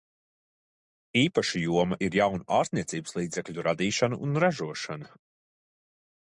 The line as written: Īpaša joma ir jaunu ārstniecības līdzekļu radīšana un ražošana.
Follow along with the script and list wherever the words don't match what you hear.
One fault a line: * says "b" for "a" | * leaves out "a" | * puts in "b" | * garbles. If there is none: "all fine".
all fine